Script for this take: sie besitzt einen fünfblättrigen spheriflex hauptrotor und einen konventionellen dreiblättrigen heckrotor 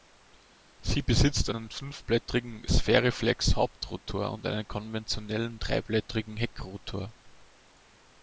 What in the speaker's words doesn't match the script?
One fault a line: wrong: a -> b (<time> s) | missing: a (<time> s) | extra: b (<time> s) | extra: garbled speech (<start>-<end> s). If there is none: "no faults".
no faults